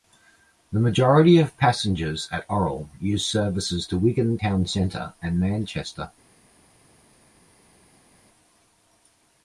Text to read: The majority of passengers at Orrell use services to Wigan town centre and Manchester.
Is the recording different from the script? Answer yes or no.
no